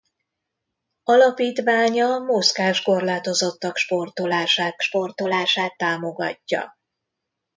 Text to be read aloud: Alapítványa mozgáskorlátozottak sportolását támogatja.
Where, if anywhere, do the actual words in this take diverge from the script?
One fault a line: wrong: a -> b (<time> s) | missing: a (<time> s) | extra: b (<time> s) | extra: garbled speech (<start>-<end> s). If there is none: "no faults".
extra: sportolását (4.8 s)